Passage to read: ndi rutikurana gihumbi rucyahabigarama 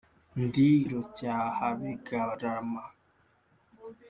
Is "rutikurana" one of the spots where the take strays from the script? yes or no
yes